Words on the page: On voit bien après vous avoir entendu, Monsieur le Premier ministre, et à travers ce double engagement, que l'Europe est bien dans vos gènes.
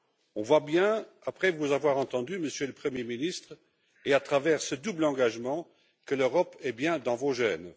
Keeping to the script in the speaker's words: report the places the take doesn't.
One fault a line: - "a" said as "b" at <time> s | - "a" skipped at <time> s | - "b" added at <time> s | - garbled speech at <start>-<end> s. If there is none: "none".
none